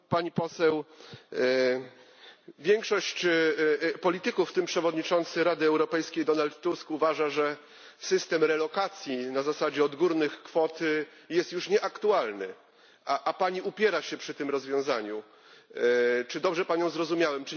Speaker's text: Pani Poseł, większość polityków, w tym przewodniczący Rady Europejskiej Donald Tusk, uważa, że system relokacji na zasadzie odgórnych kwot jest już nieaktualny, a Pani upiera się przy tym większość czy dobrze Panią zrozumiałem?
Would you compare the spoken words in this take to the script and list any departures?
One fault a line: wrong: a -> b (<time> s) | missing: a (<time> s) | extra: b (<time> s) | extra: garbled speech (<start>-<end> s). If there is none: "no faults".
wrong: większość -> rozwiązaniu (14.5 s)